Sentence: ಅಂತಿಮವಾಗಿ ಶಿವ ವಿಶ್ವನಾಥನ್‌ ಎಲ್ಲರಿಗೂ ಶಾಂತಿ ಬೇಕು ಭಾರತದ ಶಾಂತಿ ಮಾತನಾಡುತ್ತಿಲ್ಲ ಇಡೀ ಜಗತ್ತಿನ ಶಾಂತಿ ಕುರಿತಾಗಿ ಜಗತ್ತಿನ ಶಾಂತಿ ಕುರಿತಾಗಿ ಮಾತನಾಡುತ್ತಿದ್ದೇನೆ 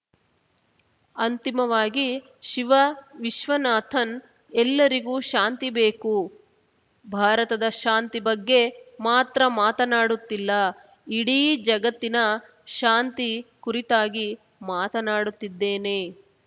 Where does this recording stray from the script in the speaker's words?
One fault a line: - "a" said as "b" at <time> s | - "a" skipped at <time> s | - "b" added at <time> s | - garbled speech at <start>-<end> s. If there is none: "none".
- "ಬಗ್ಗೆ ಮಾತ್ರ" added at 8.3 s
- "ಜಗತ್ತಿನ ಶಾಂತಿ ಕುರಿತಾಗಿ" skipped at 14.3 s